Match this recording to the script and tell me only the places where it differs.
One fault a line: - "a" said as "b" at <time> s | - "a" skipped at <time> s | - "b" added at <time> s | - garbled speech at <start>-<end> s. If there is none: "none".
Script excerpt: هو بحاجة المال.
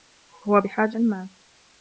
none